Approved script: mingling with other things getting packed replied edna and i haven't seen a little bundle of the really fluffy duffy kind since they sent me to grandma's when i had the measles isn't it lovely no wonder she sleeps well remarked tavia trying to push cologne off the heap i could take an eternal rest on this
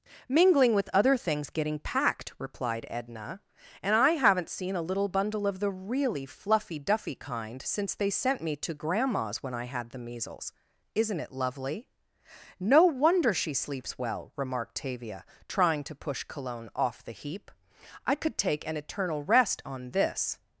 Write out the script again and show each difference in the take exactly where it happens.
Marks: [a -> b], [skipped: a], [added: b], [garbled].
mingling with other things getting packed replied edna and i haven't seen a little bundle of the really fluffy duffy kind since they sent me to grandma's when i had the measles isn't it lovely no wonder she sleeps well remarked tavia trying to push cologne off the heap i could take an eternal rest on this